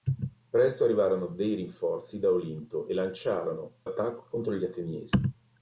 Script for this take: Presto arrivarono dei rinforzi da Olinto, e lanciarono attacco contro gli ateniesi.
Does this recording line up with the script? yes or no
yes